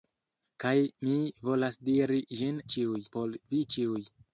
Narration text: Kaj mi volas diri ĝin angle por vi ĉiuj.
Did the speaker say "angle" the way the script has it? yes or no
no